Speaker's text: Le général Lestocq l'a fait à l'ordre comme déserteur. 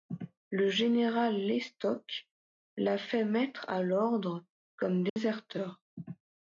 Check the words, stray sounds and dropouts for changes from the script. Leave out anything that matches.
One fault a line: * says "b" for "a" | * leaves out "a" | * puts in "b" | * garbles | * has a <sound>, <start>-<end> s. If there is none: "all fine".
* puts in "mettre"
* has a dropout, 5.1-5.2 s